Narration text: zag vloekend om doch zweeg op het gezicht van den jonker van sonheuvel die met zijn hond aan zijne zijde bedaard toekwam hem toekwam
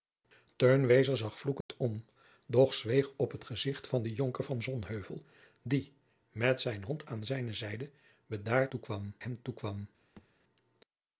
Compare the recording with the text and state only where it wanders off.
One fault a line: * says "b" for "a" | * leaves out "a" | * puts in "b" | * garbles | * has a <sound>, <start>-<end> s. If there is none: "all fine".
* has a dropout, 1.6-1.7 s
* has a thud, 10.2-10.3 s